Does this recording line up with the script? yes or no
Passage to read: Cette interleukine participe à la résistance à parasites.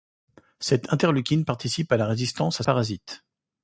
yes